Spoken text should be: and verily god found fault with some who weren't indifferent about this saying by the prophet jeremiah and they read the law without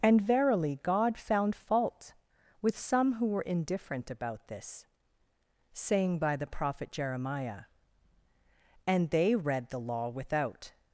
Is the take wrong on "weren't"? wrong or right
wrong